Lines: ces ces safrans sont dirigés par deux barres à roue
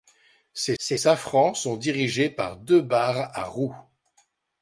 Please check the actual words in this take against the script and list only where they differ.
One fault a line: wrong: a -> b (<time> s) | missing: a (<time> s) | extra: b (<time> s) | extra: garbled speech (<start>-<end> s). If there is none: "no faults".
no faults